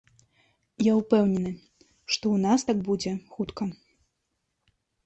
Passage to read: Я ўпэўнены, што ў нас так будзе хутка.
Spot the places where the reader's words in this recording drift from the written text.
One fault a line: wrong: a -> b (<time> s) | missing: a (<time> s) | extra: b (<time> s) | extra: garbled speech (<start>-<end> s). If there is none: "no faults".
no faults